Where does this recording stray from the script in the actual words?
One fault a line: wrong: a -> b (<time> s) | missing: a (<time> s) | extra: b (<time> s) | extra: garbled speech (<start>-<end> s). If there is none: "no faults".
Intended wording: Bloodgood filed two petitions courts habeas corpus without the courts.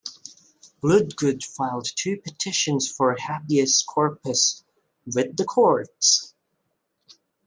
wrong: courts -> for (2.9 s)
wrong: without -> with (5.1 s)